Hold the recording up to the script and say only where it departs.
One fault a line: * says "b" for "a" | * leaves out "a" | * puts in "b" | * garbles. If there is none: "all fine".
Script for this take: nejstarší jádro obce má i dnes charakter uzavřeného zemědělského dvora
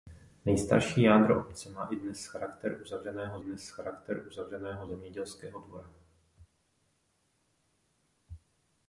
* puts in "dnes charakter uzavřeného"